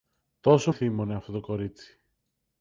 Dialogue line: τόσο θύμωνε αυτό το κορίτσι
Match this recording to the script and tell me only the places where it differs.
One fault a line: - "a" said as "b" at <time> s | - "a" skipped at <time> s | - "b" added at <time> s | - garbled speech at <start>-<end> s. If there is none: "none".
none